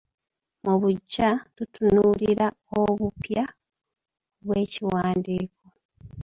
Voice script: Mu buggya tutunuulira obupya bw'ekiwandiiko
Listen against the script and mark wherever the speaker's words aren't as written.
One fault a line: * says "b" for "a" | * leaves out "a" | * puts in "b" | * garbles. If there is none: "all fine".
all fine